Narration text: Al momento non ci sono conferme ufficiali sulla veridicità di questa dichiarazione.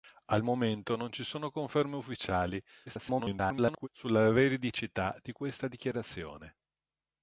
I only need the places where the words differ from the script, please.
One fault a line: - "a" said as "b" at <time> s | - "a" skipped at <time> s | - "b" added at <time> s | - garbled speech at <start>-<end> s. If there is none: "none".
- garbled speech at 2.9-3.9 s